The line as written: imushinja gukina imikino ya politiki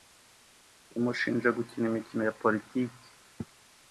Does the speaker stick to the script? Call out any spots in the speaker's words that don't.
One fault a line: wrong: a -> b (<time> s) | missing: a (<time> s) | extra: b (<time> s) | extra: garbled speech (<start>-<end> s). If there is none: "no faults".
no faults